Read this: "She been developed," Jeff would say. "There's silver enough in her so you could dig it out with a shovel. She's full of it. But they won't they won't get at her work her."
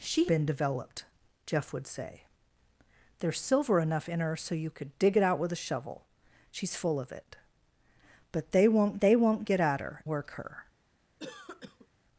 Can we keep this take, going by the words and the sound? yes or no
no